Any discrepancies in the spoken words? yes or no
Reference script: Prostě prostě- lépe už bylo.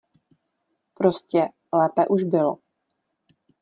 yes